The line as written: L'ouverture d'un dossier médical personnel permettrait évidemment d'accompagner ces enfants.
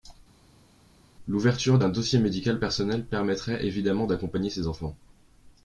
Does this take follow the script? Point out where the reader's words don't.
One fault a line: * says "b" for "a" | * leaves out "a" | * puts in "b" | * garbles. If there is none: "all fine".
all fine